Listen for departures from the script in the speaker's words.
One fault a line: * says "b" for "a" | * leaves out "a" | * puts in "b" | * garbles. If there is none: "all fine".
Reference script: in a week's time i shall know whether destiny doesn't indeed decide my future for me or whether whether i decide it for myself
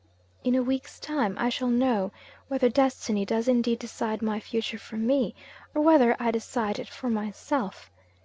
* says "does" for "doesn't"
* leaves out "whether"